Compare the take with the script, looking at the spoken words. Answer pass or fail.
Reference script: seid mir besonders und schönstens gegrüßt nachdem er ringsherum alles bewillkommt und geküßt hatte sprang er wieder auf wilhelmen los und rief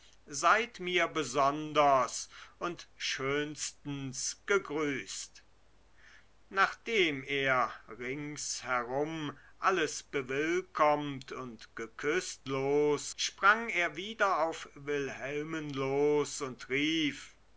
fail